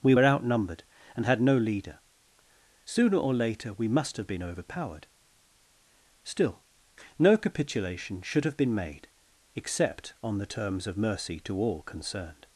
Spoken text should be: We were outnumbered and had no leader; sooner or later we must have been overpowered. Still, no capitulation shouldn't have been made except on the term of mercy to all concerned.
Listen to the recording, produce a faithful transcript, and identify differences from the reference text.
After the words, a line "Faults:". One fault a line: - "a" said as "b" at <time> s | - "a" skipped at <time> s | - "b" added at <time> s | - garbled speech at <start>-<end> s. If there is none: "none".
We were outnumbered and had no leader; sooner or later we must have been overpowered. Still, no capitulation should have been made except on the terms of mercy to all concerned.
Faults:
- "shouldn't" said as "should" at 8.2 s
- "term" said as "terms" at 10.4 s